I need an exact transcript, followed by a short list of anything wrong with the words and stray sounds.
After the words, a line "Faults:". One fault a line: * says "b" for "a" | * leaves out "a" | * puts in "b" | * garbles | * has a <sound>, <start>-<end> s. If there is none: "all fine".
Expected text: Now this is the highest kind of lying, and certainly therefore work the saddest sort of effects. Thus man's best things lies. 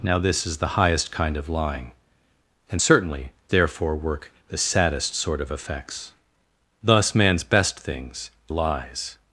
Now this is the highest kind of lying, and certainly therefore work the saddest sort of effects. Thus man's best things lies.
Faults:
all fine